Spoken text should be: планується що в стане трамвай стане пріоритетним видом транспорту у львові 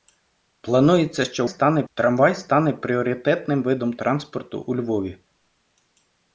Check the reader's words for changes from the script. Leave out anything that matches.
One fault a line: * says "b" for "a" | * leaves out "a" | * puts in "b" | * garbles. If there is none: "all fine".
all fine